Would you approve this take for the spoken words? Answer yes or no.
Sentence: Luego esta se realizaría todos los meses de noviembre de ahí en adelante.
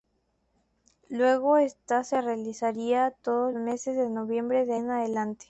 no